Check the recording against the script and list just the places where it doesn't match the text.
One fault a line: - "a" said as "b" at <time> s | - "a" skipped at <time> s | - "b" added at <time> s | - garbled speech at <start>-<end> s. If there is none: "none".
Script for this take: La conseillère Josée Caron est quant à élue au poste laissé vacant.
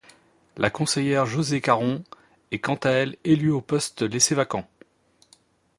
- "elle" added at 2.9 s